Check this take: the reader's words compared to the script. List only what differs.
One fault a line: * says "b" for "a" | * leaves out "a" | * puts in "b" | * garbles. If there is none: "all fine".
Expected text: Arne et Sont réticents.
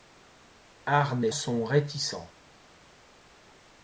all fine